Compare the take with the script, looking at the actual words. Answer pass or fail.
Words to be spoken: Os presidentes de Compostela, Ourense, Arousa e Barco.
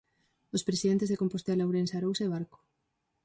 pass